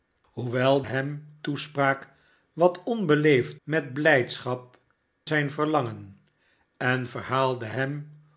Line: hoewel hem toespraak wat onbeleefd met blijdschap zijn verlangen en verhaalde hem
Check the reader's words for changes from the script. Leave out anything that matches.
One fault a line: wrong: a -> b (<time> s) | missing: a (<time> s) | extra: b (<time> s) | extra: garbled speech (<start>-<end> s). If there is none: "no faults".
no faults